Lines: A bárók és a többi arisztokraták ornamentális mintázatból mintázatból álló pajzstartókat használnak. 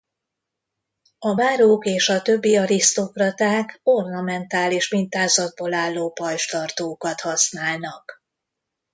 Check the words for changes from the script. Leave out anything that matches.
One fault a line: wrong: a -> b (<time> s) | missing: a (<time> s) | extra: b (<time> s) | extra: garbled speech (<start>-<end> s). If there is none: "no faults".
missing: mintázatból (5.7 s)